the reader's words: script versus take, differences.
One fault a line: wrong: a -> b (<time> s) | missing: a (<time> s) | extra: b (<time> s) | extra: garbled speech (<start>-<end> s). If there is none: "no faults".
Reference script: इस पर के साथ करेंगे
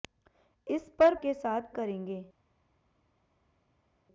no faults